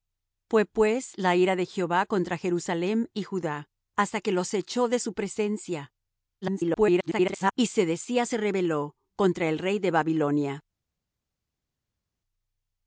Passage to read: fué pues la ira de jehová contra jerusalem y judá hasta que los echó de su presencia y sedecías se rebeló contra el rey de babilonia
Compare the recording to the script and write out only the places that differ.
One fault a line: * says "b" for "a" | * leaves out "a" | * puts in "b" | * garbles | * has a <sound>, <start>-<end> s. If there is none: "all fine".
* garbles